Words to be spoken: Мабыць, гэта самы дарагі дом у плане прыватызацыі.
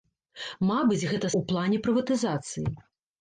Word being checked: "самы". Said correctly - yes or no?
no